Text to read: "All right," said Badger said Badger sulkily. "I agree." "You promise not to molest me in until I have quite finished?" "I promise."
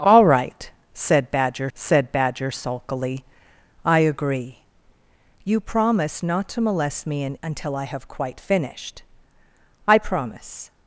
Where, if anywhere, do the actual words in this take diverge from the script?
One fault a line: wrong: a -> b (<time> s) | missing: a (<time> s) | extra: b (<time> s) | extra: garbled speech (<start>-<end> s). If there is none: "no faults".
no faults